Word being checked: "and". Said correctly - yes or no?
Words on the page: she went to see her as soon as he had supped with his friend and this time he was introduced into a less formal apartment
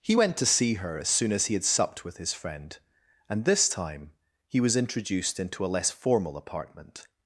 yes